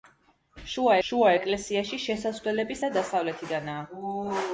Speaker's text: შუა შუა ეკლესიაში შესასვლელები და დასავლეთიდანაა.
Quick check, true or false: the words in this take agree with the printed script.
true